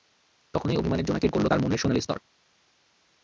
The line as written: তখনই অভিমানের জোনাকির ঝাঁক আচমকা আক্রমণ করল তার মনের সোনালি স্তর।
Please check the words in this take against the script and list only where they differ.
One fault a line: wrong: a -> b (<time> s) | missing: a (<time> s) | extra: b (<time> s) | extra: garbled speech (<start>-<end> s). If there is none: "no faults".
missing: ঝাঁক আচমকা আক্রমণ (1.3 s)